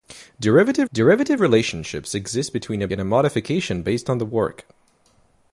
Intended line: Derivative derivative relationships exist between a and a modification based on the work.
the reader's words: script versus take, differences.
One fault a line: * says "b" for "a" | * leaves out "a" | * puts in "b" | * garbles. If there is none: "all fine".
all fine